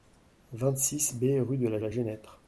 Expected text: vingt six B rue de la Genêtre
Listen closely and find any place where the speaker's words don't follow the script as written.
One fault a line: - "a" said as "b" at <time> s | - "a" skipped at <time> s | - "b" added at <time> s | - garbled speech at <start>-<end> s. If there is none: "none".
- "la" added at 1.8 s